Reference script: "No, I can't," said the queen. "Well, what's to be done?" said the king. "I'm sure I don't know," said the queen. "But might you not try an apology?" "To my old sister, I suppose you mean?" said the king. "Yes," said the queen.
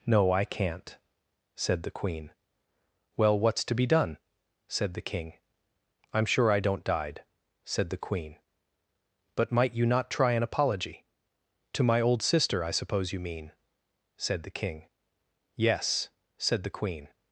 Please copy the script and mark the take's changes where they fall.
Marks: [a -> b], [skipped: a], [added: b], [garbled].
"No, I can't," said the queen. "Well, what's to be done?" said the king. "I'm sure I don't [know," -> died] said the queen. "But might you not try an apology?" "To my old sister, I suppose you mean?" said the king. "Yes," said the queen.